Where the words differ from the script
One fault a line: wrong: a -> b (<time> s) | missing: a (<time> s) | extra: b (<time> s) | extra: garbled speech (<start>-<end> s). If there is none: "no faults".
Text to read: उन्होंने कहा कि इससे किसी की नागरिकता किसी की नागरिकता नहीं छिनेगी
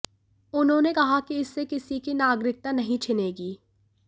missing: किसी की नागरिकता (2.7 s)